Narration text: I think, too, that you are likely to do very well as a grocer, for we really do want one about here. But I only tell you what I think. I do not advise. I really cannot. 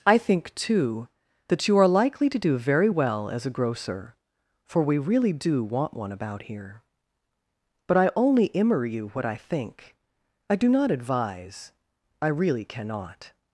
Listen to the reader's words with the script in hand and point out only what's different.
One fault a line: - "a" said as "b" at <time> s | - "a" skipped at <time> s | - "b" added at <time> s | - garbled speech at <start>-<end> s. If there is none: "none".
- "tell" said as "immer" at 8.5 s